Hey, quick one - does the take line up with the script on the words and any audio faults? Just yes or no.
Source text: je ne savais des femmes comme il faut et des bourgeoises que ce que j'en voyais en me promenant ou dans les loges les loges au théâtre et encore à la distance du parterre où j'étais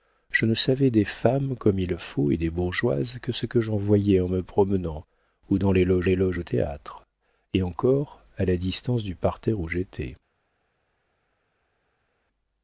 yes